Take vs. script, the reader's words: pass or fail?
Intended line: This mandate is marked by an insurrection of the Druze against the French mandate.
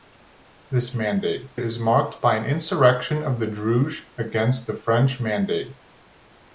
pass